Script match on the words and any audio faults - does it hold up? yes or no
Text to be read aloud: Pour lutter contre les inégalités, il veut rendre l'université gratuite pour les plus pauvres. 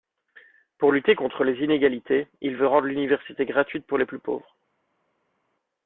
yes